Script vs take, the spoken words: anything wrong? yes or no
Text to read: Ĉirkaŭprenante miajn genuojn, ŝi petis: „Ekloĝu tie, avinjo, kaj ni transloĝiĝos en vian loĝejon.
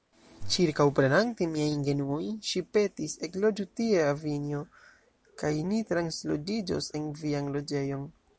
no